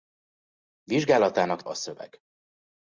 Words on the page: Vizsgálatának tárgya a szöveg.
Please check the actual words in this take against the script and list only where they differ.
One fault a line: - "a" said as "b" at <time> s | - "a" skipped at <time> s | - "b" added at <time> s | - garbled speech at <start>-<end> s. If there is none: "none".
- "tárgya" skipped at 1.6 s